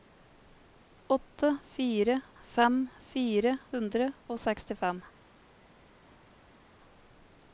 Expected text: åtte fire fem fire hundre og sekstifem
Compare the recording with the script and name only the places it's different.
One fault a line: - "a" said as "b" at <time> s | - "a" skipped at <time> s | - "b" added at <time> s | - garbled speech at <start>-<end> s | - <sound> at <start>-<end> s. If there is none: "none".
none